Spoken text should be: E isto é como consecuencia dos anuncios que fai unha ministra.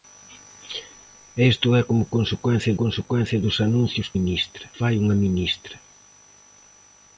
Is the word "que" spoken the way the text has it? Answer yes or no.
no